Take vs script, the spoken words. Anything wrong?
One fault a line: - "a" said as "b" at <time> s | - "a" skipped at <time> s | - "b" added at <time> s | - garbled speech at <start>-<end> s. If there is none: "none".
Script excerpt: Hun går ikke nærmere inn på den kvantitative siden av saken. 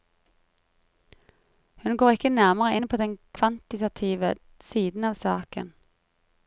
none